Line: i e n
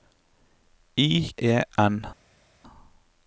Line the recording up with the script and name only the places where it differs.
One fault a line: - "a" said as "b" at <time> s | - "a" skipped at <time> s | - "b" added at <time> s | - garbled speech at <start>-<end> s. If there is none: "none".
none